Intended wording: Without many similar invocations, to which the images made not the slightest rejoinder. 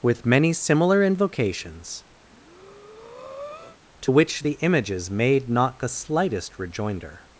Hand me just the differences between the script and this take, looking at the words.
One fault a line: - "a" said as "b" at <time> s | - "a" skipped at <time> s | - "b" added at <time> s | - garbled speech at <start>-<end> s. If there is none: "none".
- "Without" said as "With" at 0.0 s